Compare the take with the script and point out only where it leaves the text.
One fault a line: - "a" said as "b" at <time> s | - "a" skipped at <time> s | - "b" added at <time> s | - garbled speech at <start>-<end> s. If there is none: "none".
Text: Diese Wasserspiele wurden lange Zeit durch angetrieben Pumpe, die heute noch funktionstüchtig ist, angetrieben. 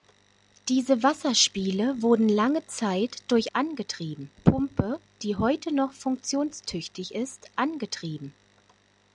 none